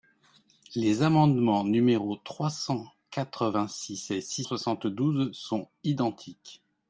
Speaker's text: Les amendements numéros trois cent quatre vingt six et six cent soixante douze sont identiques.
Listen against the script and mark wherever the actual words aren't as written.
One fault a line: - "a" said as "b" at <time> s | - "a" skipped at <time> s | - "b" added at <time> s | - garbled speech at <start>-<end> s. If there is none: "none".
- "cent" skipped at 4.4 s